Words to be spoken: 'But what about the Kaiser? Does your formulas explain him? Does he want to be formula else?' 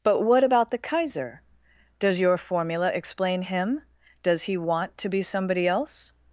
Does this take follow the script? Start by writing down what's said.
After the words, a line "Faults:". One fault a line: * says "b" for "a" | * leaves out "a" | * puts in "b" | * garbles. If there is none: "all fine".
'But what about the Kaiser? Does your formula explain him? Does he want to be somebody else?'
Faults:
* says "formula" for "formulas"
* says "somebody" for "formula"